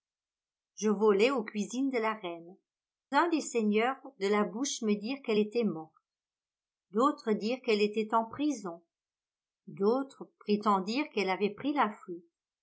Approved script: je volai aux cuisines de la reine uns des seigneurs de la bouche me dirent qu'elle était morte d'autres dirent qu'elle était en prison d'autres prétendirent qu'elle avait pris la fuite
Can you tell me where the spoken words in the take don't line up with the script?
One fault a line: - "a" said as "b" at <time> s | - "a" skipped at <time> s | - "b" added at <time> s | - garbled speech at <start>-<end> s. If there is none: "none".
none